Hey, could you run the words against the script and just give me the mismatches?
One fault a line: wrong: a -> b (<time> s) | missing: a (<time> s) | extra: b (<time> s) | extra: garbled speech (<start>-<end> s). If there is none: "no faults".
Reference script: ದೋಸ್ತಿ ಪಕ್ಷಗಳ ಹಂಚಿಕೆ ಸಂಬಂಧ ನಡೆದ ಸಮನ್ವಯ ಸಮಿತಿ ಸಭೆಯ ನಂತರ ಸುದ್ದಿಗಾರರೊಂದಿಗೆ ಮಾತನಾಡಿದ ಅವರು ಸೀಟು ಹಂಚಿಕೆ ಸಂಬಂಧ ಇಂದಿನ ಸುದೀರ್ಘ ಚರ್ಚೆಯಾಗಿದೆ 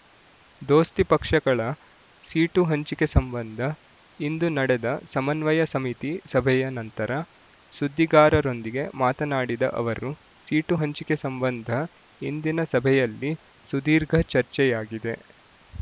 extra: ಸೀಟು (2.2 s)
extra: ಇಂದು (4.2 s)
extra: ಸಭೆಯಲ್ಲಿ (12.7 s)